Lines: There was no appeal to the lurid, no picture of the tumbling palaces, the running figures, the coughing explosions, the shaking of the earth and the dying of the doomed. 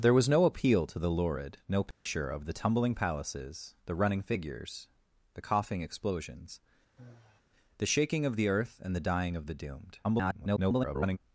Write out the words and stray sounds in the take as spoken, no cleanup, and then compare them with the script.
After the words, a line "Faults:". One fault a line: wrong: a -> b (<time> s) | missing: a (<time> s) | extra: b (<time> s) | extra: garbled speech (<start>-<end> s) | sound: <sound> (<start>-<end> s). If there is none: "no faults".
There was no appeal to the lurid, no picture of the tumbling palaces, the running figures, the coughing explosions, the shaking of the earth and the dying of the doomed. [garbled]
Faults:
sound: dropout (1.9-2.1 s)
sound: sigh (7.0-7.4 s)
extra: garbled speech (10.0-11.2 s)